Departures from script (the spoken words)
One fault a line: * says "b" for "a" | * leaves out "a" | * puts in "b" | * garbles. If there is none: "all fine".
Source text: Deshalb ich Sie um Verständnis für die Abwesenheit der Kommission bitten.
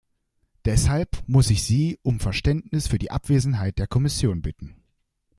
* puts in "muss"